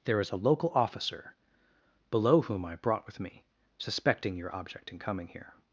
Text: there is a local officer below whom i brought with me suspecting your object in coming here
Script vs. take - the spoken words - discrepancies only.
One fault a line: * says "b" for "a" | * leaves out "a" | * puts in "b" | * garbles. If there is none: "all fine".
all fine